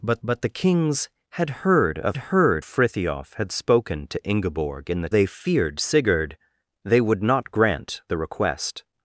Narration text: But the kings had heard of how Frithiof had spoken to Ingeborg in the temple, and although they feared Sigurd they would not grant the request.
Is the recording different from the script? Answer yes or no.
yes